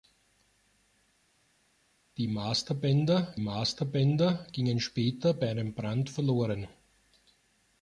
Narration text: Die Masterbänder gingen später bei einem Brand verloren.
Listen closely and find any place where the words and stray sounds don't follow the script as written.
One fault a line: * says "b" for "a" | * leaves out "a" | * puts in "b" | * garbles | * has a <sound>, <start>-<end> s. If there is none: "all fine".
* puts in "Masterbänder"